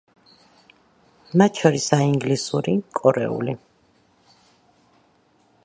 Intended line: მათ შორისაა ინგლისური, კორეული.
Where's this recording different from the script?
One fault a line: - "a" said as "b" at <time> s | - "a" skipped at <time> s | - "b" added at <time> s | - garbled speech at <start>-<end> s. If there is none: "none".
none